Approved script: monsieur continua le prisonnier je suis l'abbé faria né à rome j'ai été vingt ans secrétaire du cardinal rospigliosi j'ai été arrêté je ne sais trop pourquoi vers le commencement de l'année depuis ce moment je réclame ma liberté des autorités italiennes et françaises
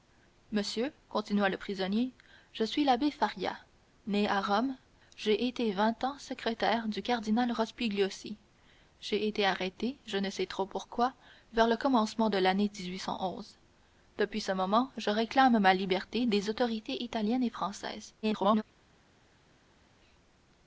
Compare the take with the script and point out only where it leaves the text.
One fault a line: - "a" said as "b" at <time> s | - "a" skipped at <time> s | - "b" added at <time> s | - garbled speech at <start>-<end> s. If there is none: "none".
- garbled speech at 18.2-18.6 s